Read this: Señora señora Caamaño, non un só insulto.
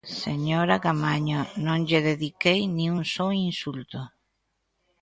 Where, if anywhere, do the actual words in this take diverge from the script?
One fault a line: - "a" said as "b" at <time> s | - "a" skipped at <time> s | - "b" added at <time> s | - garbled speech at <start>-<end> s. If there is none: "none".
- "señora" skipped at 0.8 s
- "lle dediquei nin" added at 1.9 s